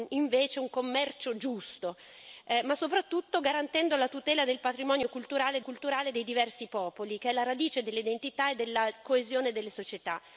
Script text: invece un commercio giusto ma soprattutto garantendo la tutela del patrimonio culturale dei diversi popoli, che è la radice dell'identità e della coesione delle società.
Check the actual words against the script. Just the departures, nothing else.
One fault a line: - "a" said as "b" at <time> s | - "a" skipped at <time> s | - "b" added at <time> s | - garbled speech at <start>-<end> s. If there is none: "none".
- "culturale" added at 5.6 s